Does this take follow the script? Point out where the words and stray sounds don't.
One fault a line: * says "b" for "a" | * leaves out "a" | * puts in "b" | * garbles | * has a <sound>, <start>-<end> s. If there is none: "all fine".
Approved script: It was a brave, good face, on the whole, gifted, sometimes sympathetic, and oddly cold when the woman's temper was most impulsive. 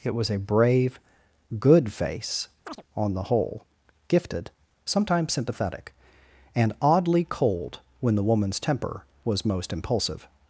* has a chirp, 2.6-2.8 s